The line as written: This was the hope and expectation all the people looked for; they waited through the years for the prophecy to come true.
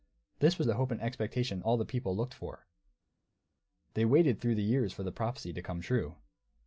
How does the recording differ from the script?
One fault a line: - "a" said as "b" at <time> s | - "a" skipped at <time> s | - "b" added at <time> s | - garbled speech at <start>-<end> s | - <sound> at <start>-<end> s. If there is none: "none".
none